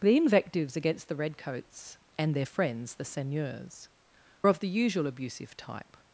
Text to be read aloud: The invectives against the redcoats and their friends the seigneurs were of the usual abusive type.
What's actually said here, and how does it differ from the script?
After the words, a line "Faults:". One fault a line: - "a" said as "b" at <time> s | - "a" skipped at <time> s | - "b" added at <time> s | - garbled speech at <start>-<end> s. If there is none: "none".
The invectives against the redcoats and their friends the seigneurs of the usual abusive type.
Faults:
- "were" skipped at 3.9 s